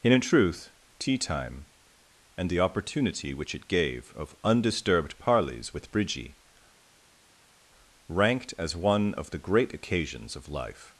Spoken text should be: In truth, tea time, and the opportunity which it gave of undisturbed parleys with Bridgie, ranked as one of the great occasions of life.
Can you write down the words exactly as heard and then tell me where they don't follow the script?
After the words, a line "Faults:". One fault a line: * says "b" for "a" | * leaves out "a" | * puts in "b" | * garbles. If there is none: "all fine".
and In truth, tea time, and the opportunity which it gave of undisturbed parleys with Bridgie, ranked as one of the great occasions of life.
Faults:
* puts in "and"